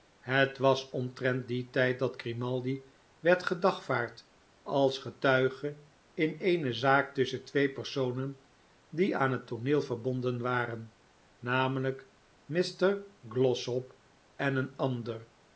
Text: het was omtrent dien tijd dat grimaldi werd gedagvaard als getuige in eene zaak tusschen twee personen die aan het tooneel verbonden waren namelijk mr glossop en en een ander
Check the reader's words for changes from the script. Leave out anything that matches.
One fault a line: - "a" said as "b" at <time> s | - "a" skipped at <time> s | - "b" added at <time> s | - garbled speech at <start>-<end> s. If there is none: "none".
- "en" skipped at 14.6 s